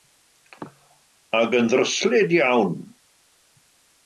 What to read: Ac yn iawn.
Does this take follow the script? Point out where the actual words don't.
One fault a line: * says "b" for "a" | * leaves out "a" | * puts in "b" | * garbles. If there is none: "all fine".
* puts in "ddryslyd"